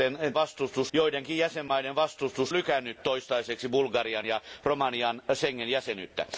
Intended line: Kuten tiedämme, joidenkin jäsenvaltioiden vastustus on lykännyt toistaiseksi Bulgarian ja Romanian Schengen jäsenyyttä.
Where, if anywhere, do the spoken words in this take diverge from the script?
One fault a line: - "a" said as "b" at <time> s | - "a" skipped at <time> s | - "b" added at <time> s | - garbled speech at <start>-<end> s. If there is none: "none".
- "tiedämme" said as "vastustus" at 0.3 s
- "on" skipped at 2.5 s